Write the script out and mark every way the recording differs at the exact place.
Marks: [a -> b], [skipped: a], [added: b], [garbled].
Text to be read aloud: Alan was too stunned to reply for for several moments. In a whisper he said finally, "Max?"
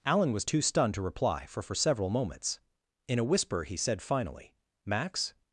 Alan was too stunned to reply for for several moments. In a whisper he said finally, "Max?"